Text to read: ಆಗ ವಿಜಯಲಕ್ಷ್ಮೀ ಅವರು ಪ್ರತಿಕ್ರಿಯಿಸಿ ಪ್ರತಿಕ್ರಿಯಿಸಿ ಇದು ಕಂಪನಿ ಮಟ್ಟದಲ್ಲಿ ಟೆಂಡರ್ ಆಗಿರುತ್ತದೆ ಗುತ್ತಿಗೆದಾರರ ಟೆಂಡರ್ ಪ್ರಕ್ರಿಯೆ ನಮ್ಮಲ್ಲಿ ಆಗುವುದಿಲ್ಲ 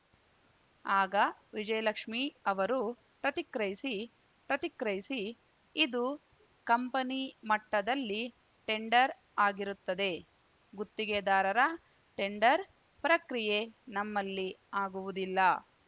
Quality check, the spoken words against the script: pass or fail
pass